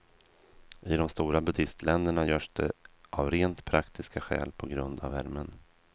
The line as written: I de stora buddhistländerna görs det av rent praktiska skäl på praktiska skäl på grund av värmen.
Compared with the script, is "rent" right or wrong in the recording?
right